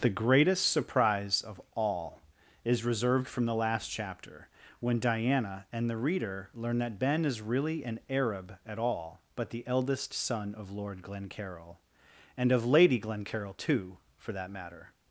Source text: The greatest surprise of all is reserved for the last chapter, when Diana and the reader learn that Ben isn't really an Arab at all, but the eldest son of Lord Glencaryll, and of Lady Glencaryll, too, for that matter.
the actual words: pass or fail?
fail